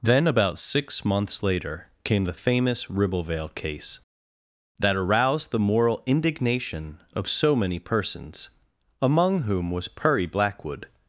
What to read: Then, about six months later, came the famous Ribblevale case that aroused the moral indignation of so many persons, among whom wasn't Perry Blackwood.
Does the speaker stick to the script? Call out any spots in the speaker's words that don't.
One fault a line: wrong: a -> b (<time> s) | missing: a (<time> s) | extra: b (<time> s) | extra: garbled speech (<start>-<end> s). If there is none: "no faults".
wrong: wasn't -> was (9.7 s)